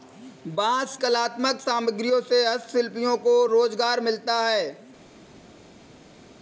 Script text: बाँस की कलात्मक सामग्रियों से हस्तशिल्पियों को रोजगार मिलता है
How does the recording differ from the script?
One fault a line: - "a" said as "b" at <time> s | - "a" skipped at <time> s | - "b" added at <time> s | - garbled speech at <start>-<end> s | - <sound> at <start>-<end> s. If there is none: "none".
- "की" skipped at 0.9 s